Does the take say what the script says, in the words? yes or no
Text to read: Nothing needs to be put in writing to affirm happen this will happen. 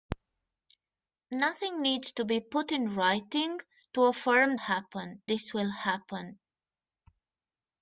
yes